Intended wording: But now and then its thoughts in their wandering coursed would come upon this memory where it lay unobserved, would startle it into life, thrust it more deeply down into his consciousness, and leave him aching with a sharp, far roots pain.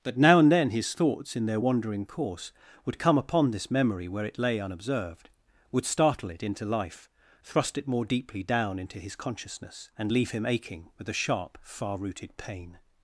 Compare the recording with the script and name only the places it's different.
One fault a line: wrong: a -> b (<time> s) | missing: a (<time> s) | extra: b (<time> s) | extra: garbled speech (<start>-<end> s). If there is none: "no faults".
wrong: its -> his (0.7 s)
wrong: coursed -> course (2.1 s)
wrong: roots -> rooted (12.0 s)